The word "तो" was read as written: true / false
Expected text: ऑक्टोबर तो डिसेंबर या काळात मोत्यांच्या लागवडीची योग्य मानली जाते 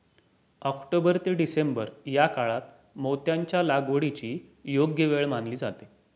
false